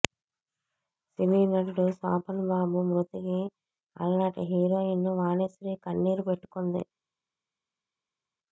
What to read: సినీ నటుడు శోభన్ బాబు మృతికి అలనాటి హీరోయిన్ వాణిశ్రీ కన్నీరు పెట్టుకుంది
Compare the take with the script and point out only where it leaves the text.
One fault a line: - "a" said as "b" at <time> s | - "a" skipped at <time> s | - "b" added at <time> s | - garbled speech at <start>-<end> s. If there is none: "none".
none